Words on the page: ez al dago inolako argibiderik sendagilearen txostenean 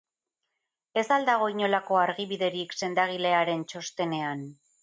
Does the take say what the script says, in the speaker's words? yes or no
yes